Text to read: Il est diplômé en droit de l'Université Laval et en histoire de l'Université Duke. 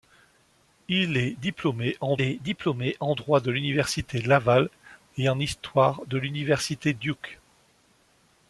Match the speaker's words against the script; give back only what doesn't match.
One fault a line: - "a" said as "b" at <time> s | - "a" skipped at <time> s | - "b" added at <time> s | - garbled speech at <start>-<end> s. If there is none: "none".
- "est diplômé en" added at 2.2 s